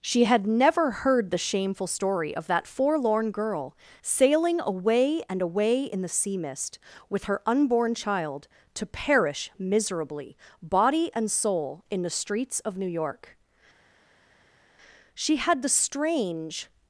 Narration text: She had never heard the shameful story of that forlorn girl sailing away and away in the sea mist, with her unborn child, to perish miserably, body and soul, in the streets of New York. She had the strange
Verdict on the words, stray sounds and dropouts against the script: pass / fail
pass